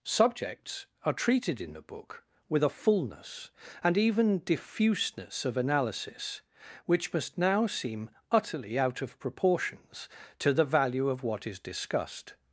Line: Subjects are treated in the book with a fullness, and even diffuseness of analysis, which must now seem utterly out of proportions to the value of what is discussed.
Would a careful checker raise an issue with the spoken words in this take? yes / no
no